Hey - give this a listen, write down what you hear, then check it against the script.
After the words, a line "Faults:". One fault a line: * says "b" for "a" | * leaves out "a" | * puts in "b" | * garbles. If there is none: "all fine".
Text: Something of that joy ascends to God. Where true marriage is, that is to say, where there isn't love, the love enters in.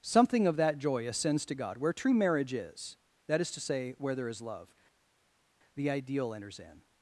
Something of that joy ascends to God. Where true marriage is, that is to say, where there is love, the ideal enters in.
Faults:
* says "is" for "isn't"
* says "ideal" for "love"